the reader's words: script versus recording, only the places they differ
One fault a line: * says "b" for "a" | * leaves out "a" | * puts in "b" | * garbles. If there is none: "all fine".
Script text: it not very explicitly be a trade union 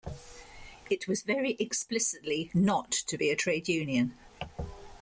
* says "was" for "not"
* puts in "not to"